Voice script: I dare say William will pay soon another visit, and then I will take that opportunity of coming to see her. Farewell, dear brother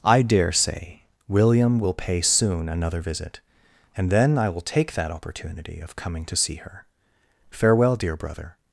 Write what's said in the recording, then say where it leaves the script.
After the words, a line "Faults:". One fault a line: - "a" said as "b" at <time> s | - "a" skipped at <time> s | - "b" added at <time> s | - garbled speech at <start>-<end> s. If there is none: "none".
I dare say William will pay soon another visit, and then I will take that opportunity of coming to see her. Farewell, dear brother
Faults:
none